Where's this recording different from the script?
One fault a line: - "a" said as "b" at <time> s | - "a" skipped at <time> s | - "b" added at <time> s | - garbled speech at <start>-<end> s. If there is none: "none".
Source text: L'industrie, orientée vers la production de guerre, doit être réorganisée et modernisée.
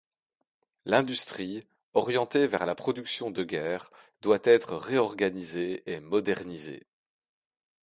none